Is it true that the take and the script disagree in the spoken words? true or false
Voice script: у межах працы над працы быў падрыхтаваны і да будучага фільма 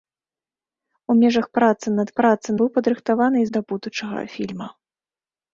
false